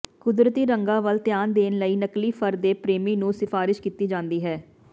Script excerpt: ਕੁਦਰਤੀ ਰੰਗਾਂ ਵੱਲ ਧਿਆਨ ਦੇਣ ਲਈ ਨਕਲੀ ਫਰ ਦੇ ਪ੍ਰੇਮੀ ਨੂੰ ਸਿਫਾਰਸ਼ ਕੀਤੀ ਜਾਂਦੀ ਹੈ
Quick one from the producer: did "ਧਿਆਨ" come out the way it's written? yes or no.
yes